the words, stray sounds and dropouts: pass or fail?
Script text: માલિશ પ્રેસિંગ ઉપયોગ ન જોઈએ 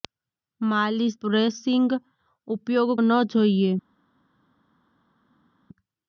pass